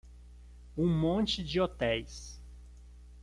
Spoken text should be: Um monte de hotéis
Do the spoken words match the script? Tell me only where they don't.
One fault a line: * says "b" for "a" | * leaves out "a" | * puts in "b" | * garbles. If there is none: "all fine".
all fine